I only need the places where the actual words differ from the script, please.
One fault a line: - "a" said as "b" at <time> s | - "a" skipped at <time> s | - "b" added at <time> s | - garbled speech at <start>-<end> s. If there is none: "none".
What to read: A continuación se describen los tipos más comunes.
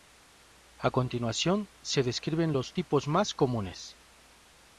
none